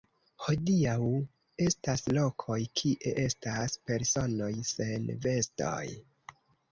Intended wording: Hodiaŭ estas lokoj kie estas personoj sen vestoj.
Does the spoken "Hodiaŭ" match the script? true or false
true